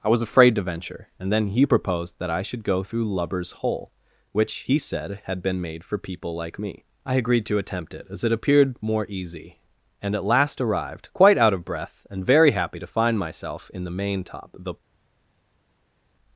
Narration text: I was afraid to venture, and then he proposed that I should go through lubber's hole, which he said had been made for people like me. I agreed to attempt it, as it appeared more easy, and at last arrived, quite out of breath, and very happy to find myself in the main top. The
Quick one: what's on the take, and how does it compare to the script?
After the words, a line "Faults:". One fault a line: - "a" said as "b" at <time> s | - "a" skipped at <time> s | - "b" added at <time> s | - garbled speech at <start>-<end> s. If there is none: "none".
I was afraid to venture, and then he proposed that I should go through lubber's hole, which he said had been made for people like me. I agreed to attempt it, as it appeared more easy, and at last arrived, quite out of breath, and very happy to find myself in the main top. The
Faults:
none